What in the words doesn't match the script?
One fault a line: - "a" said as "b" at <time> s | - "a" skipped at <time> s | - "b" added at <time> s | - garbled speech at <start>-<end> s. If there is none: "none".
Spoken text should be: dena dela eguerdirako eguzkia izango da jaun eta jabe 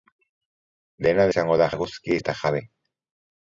- "dela eguerdirako eguzkia" skipped at 1.3 s
- "jaun" said as "eguzkia" at 1.7 s